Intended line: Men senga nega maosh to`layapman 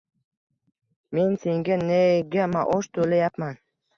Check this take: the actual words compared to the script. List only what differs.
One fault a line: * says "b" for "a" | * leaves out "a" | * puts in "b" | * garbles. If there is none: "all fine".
all fine